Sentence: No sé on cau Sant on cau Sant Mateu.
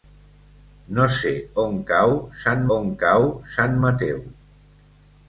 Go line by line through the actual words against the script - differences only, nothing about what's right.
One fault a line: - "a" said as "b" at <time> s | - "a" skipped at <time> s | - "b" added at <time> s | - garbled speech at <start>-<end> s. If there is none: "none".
none